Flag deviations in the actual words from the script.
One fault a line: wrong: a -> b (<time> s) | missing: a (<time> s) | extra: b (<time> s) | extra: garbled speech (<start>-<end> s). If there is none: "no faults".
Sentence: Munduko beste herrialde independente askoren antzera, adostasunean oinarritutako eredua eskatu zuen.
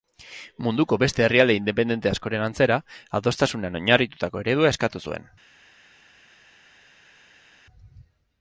no faults